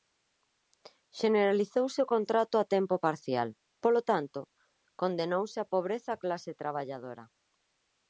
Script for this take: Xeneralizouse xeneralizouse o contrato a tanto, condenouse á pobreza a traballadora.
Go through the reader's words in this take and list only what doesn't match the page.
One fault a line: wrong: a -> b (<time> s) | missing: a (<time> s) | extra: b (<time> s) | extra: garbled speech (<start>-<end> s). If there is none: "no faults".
missing: xeneralizouse (2.0 s)
extra: tempo parcial polo (2.8 s)
extra: clase (6.2 s)